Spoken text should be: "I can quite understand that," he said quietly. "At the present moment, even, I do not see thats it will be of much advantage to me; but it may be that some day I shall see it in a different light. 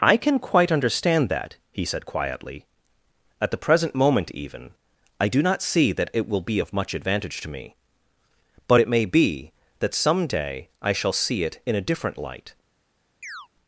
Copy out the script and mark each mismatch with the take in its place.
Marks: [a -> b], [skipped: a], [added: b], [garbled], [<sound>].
"I can quite understand that," he said quietly. "At the present moment, even, I do not see [thats -> that] it will be of much advantage to me; but it may be that some day I shall see it in a different light. [chirp]